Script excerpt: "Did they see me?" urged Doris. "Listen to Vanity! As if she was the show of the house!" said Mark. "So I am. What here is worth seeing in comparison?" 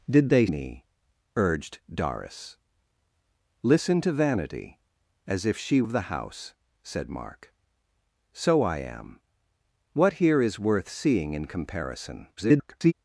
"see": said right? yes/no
no